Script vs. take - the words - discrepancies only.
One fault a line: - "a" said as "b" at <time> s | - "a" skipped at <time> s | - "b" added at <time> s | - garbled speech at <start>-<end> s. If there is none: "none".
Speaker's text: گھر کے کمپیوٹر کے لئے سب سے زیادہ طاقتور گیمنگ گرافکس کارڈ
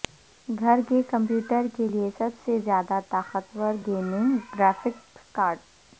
none